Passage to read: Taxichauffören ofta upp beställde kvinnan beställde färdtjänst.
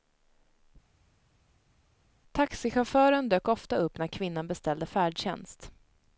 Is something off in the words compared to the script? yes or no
yes